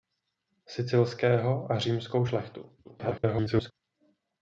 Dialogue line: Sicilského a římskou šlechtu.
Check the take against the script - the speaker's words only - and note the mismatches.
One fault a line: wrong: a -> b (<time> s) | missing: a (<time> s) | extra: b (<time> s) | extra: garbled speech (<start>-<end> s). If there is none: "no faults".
extra: garbled speech (2.8-3.7 s)